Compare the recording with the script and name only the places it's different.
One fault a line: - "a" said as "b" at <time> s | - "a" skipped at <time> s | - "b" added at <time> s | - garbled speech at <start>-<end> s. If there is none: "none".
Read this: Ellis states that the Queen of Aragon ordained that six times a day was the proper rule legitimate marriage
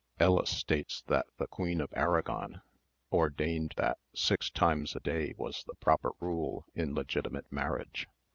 - "in" added at 6.8 s